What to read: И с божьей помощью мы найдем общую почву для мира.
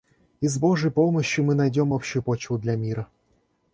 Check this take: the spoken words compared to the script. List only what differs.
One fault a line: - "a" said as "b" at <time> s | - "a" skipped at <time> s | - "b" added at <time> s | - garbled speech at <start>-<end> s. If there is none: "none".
none